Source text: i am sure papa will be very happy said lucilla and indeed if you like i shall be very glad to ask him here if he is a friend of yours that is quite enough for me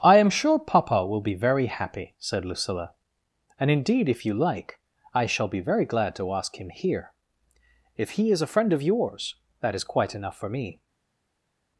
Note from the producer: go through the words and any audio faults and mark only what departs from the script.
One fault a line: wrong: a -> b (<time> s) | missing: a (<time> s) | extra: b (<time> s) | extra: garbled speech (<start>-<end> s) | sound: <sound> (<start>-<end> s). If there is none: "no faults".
no faults